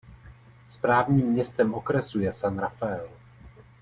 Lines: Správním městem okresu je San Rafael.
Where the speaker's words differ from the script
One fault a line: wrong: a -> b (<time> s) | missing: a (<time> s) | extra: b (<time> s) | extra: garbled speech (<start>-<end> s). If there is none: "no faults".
no faults